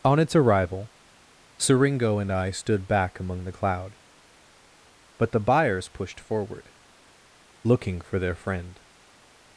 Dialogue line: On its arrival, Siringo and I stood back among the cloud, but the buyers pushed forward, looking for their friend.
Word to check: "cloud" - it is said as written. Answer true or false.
true